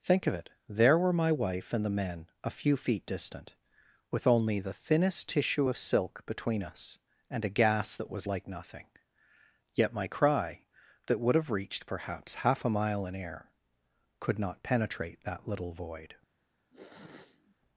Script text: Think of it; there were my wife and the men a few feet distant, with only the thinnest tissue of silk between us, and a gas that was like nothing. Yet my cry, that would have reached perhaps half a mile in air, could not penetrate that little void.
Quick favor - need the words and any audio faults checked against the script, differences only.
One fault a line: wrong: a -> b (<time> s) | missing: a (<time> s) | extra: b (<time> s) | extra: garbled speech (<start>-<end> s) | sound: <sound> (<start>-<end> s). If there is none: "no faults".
sound: sniff (16.7-17.5 s)